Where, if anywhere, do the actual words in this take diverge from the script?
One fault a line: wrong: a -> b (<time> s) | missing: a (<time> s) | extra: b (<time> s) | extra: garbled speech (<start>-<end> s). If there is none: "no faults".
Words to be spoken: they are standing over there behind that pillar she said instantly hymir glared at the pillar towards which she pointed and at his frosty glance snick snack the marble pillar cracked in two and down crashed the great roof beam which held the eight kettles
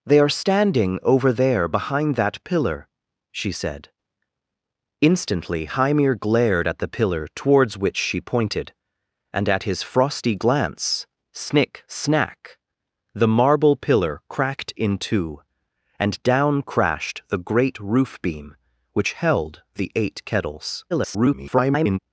extra: garbled speech (20.9-22.0 s)